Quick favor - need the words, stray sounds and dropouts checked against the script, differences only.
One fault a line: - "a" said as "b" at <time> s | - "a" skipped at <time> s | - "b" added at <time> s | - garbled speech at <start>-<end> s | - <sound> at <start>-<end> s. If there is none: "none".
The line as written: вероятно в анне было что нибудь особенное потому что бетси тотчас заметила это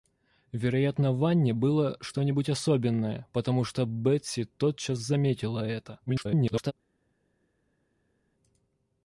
- garbled speech at 6.1-6.7 s